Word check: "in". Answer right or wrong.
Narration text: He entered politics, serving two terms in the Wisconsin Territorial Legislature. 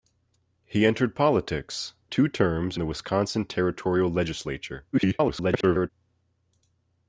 wrong